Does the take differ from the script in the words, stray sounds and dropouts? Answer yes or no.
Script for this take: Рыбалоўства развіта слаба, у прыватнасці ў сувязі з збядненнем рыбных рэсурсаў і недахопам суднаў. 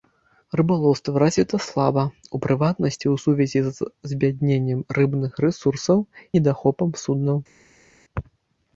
yes